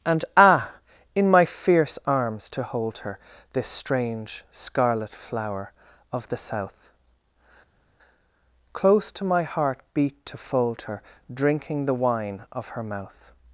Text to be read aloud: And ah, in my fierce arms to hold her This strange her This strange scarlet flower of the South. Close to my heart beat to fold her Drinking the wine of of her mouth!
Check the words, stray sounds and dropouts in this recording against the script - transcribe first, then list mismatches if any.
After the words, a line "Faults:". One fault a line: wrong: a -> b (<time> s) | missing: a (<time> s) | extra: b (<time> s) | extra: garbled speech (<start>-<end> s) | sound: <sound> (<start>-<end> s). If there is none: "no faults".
And ah, in my fierce arms to hold her This strange scarlet flower of the South. Close to my heart beat to fold her Drinking the wine of her mouth!
Faults:
missing: her This strange (4.4 s)
missing: of (12.7 s)